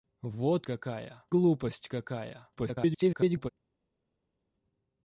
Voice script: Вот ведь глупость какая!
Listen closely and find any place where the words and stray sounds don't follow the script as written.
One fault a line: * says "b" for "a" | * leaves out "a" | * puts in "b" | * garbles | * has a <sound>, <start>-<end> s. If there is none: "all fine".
* says "какая" for "ведь"
* garbles